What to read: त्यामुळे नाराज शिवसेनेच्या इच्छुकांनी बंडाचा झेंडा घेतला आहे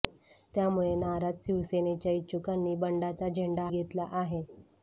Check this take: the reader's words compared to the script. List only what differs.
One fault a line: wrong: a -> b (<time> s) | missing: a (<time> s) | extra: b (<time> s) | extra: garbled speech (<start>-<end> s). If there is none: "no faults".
no faults